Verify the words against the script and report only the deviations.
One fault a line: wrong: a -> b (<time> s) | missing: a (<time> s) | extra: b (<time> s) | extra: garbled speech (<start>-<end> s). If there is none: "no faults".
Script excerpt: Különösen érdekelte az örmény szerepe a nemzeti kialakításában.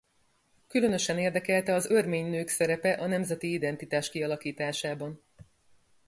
extra: nők (2.3 s)
extra: identitás (3.5 s)